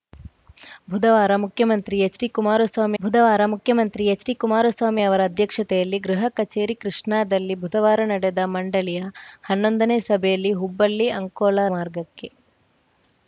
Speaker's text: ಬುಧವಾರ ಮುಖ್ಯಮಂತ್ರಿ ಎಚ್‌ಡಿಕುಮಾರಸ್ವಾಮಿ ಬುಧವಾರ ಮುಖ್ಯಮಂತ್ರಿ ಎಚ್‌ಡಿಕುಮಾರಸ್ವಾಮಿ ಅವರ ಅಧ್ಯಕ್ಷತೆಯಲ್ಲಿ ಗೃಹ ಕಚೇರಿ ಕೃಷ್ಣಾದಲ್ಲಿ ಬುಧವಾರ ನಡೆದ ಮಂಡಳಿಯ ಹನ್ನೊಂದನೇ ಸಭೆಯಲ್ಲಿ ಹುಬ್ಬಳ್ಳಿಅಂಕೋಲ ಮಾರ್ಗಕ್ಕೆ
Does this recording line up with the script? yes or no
yes